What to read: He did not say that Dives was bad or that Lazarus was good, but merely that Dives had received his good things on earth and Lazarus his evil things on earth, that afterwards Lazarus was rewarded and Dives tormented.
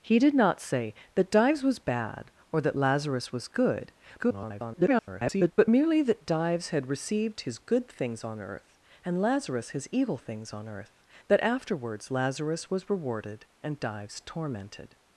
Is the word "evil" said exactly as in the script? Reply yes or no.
yes